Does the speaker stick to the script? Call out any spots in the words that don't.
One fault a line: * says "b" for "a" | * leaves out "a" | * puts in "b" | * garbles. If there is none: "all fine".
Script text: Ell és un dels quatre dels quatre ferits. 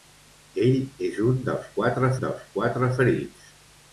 all fine